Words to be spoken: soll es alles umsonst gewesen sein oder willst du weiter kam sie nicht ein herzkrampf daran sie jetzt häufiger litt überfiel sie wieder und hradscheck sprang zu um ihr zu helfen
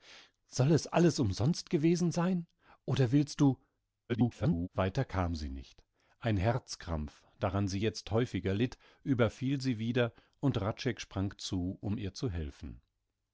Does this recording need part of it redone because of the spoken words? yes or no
yes